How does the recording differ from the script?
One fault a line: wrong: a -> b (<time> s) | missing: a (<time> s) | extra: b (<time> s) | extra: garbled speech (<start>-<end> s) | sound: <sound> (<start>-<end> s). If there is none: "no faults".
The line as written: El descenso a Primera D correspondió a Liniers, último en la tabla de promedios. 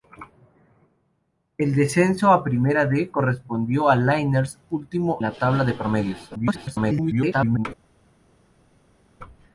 missing: en (5.2 s)
extra: garbled speech (6.3-7.7 s)